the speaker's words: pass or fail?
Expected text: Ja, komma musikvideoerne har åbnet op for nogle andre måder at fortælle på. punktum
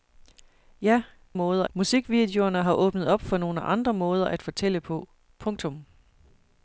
fail